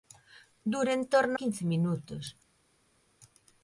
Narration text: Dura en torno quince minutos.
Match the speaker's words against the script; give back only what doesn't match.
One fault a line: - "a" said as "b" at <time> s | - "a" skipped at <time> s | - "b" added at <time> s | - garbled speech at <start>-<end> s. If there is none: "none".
none